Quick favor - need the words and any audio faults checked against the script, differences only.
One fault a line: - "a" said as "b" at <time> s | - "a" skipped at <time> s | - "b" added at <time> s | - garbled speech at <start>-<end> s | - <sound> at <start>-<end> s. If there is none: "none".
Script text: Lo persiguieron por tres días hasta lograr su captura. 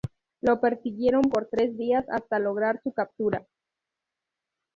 none